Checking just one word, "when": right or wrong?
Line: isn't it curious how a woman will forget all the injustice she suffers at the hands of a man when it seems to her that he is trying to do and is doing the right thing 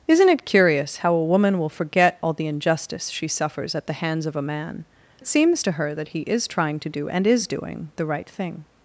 wrong